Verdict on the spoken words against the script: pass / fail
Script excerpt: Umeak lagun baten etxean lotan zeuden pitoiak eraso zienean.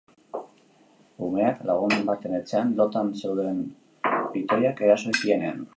pass